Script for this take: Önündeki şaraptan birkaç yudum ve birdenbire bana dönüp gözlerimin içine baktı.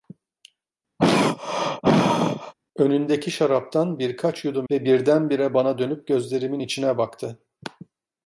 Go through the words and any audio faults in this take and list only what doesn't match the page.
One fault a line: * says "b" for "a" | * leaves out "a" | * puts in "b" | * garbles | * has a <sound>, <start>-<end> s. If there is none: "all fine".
* has a throat clearing, 1.0-2.5 s